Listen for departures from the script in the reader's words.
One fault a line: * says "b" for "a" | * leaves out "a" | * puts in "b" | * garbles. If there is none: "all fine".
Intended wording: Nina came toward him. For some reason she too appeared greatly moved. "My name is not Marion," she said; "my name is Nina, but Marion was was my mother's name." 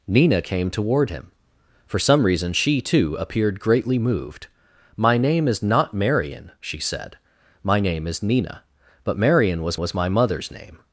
all fine